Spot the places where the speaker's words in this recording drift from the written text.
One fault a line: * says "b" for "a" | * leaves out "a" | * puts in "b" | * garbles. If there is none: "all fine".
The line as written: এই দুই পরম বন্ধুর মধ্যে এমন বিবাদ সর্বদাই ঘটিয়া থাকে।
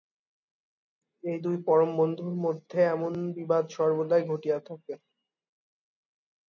all fine